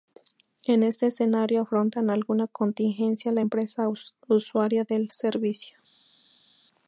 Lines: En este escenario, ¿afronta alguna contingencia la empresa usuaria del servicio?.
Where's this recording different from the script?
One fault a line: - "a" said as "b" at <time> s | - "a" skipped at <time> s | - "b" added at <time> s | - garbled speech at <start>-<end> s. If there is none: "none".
none